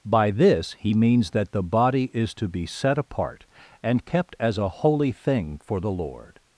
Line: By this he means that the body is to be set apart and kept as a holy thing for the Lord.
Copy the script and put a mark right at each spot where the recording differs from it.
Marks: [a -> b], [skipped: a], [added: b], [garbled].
By this he means that the body is to be set apart and kept as a holy thing for the Lord.